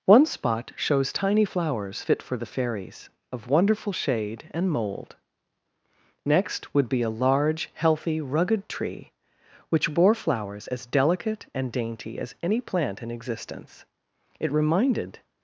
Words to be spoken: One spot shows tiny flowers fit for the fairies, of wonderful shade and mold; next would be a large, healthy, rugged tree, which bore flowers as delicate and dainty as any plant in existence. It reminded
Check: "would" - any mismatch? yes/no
no